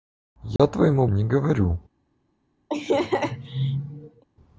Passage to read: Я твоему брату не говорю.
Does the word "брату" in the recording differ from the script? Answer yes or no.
yes